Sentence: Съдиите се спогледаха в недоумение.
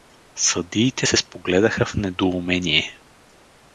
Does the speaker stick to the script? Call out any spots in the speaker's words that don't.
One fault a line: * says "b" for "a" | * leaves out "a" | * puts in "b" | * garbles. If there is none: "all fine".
all fine